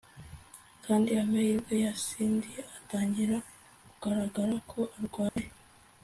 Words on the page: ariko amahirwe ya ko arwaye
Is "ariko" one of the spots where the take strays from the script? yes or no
yes